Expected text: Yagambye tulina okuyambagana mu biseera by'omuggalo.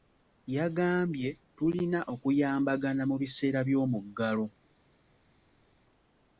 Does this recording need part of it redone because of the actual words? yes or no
no